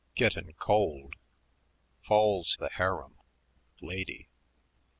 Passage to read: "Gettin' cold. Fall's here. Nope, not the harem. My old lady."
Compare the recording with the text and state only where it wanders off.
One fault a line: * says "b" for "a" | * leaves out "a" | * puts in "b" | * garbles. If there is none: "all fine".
* leaves out "here Nope not"
* leaves out "My old"